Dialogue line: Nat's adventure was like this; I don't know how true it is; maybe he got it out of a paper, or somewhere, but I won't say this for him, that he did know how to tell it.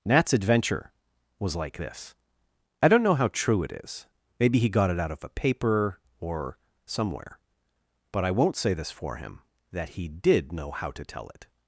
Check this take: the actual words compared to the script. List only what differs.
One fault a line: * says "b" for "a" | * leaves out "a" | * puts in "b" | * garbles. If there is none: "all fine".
all fine